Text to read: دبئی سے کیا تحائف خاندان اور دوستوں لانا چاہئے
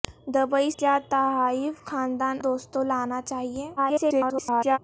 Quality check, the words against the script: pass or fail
fail